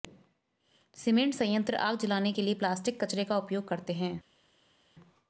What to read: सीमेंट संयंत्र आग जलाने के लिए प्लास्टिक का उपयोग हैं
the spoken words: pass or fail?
fail